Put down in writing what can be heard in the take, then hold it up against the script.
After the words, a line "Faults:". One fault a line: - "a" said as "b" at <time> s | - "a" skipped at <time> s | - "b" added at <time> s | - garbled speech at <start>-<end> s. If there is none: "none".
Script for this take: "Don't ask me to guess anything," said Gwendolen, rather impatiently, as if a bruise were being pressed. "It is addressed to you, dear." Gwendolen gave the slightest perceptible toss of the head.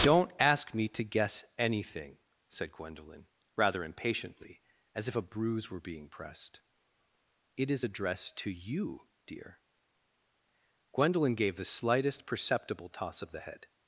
"Don't ask me to guess anything," said Gwendolen, rather impatiently, as if a bruise were being pressed. "It is addressed to you, dear." Gwendolen gave the slightest perceptible toss of the head.
Faults:
none